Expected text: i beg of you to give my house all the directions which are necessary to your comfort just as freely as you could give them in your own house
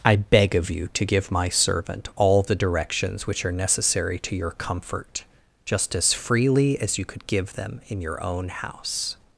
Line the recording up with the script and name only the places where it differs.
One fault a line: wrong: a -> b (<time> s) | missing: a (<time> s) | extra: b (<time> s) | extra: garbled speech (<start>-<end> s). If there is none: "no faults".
wrong: house -> servant (1.5 s)